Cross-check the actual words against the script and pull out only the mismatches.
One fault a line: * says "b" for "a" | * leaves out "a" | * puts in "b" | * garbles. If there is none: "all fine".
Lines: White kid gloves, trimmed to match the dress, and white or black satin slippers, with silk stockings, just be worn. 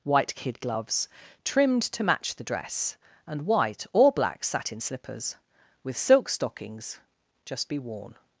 all fine